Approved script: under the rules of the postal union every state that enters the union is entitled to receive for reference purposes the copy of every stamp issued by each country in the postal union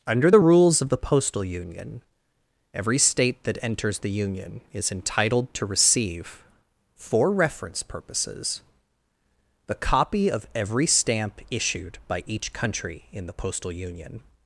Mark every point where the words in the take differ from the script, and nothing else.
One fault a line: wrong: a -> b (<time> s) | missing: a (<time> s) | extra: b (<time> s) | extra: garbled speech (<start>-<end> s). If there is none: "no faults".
no faults